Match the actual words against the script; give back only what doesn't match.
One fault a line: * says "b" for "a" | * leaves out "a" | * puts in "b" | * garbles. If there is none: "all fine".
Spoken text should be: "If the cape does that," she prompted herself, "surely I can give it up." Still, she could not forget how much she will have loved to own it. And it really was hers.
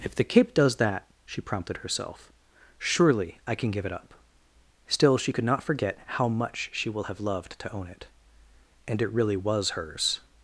all fine